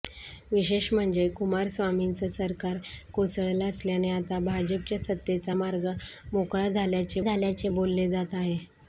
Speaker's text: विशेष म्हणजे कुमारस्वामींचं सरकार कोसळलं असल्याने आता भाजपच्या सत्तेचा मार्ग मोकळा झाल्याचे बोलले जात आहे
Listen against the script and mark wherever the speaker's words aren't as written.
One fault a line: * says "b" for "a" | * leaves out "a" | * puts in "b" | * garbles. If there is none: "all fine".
* puts in "झाल्याचे"